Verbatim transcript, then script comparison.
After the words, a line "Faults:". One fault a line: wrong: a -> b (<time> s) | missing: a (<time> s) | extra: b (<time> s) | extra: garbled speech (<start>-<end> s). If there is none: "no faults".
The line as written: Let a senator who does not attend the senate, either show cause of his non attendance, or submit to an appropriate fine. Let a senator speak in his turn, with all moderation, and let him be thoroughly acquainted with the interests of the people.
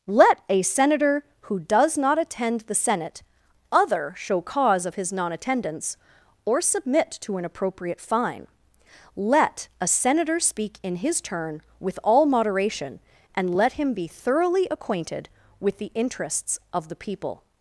Let a senator who does not attend the senate, other show cause of his non attendance, or submit to an appropriate fine. Let a senator speak in his turn, with all moderation, and let him be thoroughly acquainted with the interests of the people.
Faults:
wrong: either -> other (3.7 s)